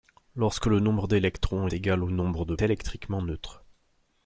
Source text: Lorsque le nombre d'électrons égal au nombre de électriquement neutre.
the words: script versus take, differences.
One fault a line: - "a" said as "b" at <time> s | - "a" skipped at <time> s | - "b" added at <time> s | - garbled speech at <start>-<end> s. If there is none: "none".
none